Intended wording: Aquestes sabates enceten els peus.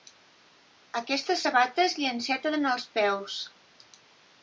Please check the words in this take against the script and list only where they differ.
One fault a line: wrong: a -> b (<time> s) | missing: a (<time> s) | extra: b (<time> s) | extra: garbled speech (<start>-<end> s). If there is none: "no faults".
extra: li (2.0 s)